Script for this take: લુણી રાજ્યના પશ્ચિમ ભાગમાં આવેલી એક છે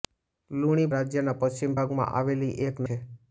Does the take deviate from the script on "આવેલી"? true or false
false